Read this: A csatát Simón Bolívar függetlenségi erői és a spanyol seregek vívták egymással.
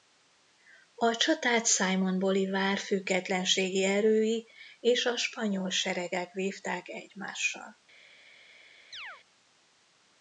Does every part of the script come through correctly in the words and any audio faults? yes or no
no